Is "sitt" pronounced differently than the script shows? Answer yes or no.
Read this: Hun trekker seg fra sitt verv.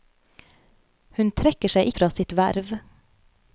no